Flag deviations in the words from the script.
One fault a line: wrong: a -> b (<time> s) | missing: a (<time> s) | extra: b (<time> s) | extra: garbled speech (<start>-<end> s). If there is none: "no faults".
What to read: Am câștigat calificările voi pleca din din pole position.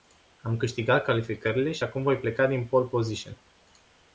extra: și acum (1.7 s)
missing: din (2.6 s)